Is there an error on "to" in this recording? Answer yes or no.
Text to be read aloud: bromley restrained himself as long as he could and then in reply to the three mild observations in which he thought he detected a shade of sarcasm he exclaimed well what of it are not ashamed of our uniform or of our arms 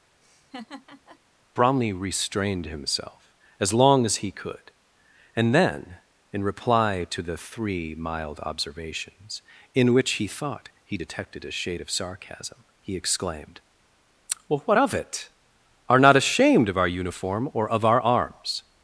no